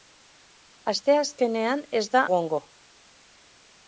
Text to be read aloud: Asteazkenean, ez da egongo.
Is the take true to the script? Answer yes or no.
yes